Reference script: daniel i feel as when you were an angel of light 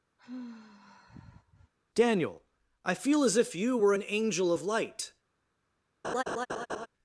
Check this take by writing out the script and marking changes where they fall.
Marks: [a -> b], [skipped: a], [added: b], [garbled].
daniel i feel as [when -> if] you were an angel of light